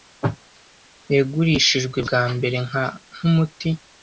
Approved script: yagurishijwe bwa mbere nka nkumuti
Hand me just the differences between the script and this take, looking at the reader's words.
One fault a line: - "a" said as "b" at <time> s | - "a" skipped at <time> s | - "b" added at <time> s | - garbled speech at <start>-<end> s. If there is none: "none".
none